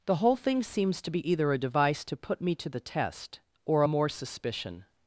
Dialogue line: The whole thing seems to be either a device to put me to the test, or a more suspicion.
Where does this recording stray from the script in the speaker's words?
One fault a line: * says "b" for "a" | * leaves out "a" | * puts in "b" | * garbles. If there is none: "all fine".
all fine